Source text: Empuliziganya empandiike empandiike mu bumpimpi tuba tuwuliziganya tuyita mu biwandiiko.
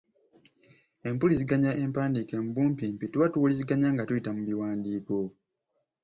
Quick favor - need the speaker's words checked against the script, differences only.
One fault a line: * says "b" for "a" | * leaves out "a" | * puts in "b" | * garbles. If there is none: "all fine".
* leaves out "empandiike"
* puts in "nga"